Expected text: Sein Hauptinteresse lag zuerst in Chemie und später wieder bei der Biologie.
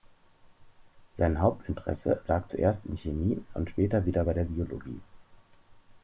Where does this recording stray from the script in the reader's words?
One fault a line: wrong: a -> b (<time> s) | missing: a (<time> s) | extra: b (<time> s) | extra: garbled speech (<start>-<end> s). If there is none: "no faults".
no faults